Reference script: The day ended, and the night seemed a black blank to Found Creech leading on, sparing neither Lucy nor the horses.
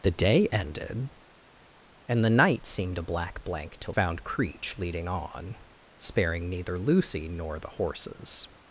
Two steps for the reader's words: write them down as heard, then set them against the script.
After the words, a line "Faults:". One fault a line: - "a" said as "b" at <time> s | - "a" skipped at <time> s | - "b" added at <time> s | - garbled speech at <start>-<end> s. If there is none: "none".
The day ended, and the night seemed a black blank to Found Creech leading on, sparing neither Lucy nor the horses.
Faults:
none